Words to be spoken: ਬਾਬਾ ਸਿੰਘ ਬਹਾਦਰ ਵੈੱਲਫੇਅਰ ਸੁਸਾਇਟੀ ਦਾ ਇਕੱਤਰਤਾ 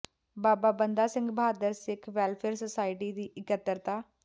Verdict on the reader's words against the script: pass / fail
fail